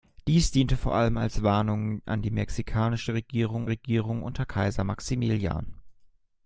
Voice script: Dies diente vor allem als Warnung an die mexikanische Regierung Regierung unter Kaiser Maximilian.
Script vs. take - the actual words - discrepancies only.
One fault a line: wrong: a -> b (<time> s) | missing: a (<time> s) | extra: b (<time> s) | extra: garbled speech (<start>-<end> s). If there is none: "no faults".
no faults